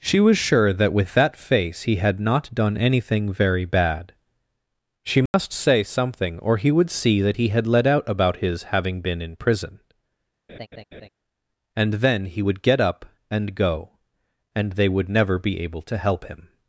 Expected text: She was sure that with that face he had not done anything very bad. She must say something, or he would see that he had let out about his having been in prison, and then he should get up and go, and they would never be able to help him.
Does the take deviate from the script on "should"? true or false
true